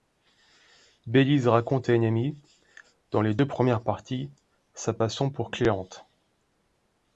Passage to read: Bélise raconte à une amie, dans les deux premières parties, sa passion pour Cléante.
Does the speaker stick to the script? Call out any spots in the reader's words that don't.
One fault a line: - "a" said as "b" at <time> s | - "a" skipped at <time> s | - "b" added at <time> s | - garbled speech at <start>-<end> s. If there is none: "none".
none